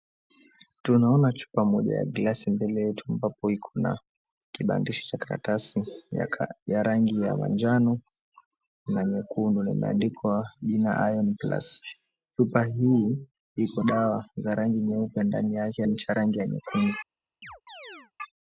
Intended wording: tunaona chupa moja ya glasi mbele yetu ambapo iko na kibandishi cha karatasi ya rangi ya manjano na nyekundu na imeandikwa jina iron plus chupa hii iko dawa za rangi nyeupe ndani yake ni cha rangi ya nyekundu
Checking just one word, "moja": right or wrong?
right